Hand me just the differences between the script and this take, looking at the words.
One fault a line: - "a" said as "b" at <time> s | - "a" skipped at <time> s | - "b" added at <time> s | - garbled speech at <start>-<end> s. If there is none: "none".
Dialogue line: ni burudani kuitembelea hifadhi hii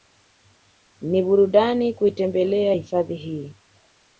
none